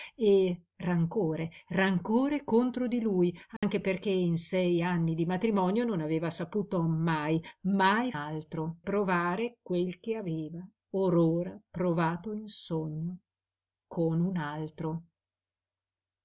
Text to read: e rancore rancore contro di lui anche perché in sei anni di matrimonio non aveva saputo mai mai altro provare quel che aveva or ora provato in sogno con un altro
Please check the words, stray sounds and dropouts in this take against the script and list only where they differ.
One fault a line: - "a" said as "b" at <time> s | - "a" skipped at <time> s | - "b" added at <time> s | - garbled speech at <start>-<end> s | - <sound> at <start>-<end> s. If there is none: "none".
- dropout at 3.6-3.6 s